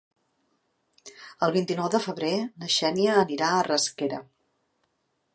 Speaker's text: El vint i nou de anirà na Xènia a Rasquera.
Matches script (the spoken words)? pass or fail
fail